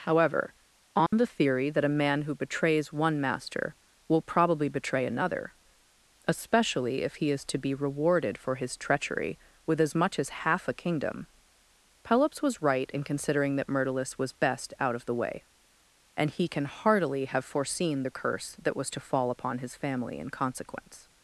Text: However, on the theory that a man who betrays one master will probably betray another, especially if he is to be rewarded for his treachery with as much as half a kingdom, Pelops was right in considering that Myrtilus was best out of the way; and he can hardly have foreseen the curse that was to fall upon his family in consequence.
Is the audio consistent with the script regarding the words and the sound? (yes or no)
no